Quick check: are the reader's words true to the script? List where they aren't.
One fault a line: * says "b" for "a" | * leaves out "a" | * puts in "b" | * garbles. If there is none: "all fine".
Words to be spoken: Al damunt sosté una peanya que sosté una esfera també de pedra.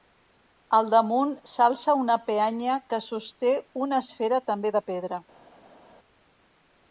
* says "s'alça" for "sosté"